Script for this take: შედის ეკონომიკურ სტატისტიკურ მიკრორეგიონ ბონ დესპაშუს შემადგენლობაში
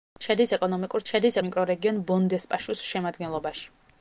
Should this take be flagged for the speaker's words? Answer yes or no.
yes